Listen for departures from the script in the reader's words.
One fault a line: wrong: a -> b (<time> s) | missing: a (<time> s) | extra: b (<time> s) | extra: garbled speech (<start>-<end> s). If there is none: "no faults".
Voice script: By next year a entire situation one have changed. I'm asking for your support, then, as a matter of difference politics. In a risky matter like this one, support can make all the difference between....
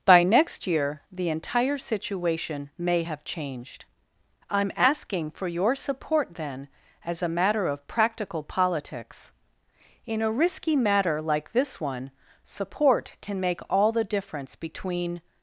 wrong: a -> the (1.1 s)
wrong: one -> may (2.8 s)
wrong: difference -> practical (7.9 s)